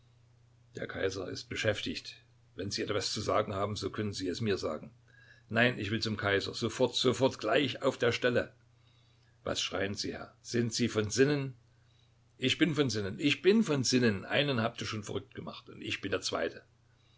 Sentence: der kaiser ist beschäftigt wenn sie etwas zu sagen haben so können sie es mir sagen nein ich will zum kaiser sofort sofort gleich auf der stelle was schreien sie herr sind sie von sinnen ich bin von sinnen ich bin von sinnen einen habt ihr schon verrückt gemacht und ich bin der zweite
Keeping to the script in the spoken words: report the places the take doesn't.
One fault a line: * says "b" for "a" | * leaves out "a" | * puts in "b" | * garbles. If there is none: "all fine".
all fine